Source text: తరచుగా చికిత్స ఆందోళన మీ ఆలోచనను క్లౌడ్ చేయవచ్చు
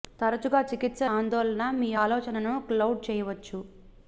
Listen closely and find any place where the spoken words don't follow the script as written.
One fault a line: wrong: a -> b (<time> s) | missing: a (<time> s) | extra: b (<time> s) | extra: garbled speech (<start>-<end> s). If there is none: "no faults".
no faults